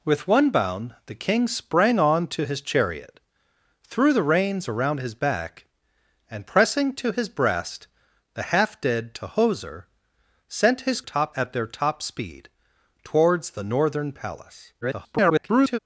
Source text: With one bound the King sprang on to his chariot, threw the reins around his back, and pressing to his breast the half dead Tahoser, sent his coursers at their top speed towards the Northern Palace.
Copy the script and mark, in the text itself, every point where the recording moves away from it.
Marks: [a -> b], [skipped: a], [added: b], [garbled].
With one bound the King sprang on to his chariot, threw the reins around his back, and pressing to his breast the half dead Tahoser, sent his [coursers -> top] at their top speed towards the Northern Palace. [garbled]